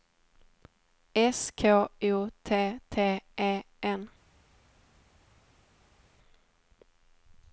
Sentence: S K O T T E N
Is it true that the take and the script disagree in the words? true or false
false